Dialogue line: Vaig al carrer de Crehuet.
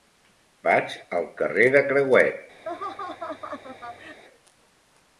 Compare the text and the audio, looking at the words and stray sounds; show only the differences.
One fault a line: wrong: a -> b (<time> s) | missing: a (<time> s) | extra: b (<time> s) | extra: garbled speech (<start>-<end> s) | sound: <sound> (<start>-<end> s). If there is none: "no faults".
sound: laugh (2.6-4.2 s)